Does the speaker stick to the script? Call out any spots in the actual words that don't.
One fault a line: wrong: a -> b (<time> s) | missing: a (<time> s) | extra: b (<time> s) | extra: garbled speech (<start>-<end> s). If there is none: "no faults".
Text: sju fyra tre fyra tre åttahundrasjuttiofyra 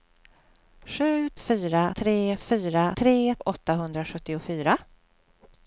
no faults